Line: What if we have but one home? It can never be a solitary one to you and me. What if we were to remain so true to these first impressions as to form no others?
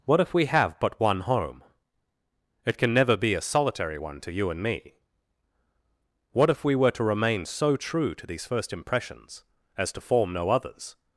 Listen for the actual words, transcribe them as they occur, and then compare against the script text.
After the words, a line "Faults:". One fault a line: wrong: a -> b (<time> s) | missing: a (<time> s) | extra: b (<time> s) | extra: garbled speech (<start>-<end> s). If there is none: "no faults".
What if we have but one home? It can never be a solitary one to you and me. What if we were to remain so true to these first impressions as to form no others?
Faults:
no faults